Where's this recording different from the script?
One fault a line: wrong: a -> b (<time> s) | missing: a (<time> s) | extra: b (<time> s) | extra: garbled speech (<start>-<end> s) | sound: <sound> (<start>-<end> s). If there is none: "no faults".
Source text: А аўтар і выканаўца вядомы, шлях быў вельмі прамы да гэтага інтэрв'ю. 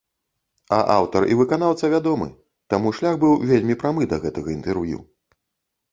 extra: таму (2.8 s)